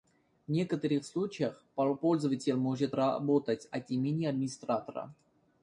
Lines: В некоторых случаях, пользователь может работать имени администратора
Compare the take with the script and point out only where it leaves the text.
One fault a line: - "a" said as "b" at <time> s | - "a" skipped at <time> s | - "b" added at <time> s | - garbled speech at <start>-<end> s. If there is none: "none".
- "от" added at 3.7 s